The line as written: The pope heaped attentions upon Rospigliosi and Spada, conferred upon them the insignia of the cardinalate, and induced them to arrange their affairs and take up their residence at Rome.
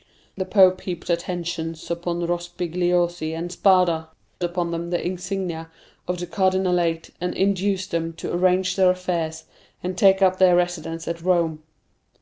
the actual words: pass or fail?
fail